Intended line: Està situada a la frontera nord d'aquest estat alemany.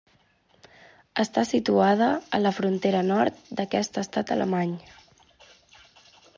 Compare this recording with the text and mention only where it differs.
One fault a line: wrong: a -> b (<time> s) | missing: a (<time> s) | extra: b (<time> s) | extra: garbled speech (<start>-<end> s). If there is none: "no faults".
no faults